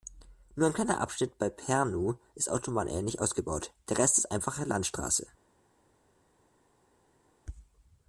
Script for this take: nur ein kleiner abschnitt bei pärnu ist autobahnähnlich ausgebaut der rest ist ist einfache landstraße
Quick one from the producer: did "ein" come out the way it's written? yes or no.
yes